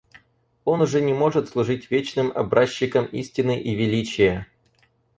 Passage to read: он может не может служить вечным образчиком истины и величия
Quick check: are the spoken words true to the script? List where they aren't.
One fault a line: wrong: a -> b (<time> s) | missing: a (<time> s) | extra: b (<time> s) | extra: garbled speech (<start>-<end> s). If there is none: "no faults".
wrong: может -> уже (0.8 s)